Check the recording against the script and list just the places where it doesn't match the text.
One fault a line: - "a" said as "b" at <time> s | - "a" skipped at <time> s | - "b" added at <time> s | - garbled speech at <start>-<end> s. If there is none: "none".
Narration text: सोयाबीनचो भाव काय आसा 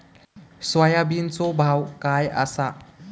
none